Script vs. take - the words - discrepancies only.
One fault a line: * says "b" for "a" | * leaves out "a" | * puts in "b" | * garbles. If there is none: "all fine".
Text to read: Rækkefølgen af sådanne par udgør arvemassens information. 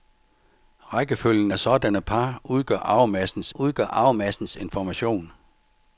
* puts in "udgør arvemassens"